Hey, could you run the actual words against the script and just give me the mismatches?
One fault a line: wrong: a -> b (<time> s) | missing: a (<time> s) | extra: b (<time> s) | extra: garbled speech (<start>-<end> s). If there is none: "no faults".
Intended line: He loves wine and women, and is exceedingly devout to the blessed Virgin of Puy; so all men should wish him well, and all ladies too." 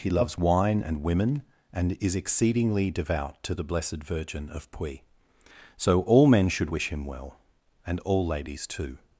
no faults